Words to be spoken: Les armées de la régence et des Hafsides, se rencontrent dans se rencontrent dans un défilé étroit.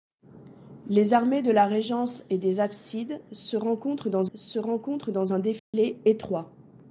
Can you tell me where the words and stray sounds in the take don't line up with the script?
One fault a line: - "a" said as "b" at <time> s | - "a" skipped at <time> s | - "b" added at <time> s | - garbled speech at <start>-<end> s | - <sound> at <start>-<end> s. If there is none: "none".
- dropout at 5.6-5.7 s